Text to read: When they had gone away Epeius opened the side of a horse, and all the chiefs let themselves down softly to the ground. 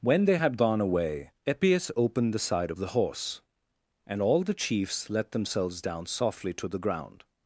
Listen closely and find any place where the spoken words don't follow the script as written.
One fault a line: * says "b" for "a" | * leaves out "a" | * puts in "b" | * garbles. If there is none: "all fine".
* says "the" for "a"